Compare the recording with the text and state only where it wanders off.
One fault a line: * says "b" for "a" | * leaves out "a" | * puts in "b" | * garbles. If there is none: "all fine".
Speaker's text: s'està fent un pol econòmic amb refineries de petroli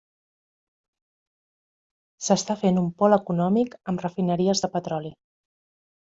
all fine